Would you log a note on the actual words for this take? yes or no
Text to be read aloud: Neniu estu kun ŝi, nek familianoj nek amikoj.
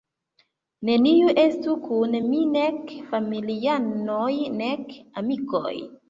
yes